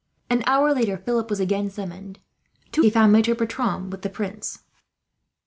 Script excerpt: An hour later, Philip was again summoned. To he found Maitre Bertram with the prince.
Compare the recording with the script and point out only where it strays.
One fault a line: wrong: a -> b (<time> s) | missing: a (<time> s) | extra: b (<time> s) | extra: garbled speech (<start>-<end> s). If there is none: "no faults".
no faults